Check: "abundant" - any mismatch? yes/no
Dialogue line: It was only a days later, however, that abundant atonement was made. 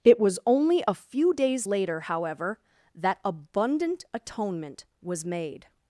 no